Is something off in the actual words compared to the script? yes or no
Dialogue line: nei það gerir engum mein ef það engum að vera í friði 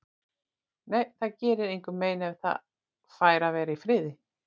yes